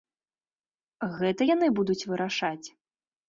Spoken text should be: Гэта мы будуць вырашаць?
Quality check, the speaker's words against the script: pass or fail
fail